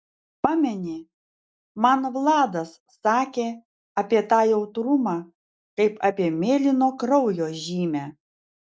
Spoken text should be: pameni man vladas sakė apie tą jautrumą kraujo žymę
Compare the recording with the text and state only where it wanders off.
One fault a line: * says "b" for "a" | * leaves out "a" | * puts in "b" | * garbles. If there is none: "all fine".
* puts in "kaip apie mėlyno"